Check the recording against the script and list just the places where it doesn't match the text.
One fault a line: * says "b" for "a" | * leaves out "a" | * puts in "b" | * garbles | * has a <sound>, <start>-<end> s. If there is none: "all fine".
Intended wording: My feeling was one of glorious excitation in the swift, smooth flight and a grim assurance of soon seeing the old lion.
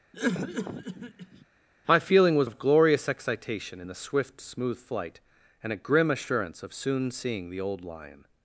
* has a cough, 0.1-1.5 s
* leaves out "one"